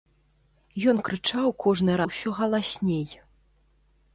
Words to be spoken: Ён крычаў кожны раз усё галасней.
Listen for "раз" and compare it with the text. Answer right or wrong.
wrong